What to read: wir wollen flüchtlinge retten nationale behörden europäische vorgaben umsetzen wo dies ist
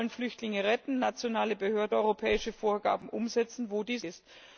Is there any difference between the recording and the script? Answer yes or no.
no